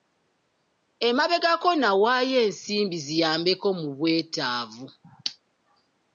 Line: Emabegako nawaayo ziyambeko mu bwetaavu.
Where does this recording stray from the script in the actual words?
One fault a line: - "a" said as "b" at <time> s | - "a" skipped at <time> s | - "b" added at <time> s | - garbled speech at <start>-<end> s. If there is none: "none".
- "ensimbi" added at 2.5 s